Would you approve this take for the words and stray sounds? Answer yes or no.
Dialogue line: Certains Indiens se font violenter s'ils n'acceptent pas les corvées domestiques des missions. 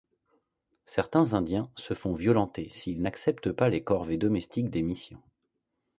yes